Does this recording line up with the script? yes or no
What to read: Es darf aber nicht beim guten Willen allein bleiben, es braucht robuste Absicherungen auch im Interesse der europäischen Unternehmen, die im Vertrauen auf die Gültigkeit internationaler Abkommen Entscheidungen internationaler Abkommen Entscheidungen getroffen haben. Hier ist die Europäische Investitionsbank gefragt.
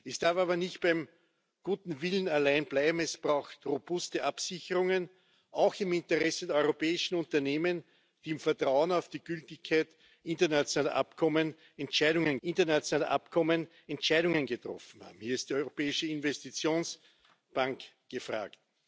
yes